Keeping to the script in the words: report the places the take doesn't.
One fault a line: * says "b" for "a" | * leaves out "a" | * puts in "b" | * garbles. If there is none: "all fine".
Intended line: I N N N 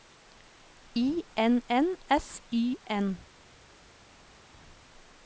* puts in "S Y"